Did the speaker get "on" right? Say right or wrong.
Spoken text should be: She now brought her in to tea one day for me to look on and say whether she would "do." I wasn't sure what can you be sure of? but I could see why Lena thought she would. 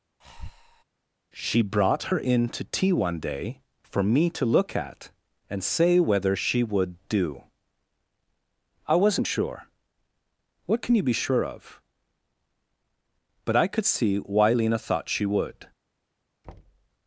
wrong